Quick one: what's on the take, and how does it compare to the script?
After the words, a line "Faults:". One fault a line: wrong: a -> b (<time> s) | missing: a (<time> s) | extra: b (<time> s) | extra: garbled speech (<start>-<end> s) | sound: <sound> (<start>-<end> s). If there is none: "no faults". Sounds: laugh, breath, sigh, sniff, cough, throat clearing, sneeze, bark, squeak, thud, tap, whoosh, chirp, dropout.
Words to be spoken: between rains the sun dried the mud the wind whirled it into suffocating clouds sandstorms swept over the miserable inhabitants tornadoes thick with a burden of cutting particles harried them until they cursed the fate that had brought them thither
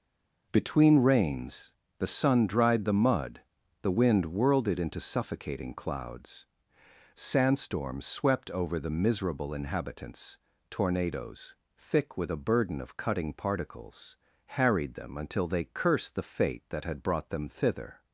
between rains the sun dried the mud the wind whirled it into suffocating clouds sandstorms swept over the miserable inhabitants tornadoes thick with a burden of cutting particles harried them until they cursed the fate that had brought them thither
Faults:
no faults